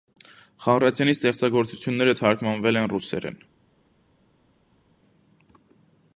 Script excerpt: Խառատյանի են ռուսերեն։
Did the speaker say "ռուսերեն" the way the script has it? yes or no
yes